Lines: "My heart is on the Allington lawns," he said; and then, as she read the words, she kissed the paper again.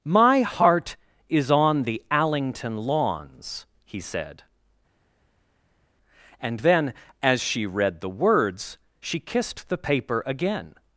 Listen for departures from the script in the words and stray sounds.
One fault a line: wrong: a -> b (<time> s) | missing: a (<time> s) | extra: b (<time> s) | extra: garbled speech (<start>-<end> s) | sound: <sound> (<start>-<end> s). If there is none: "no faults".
no faults